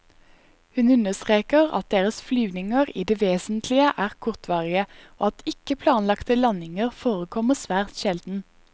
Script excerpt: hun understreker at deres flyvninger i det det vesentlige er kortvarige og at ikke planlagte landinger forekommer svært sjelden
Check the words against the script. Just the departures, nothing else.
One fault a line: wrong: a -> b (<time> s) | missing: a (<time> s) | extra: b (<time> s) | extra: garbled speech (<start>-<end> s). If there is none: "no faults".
missing: det (3.2 s)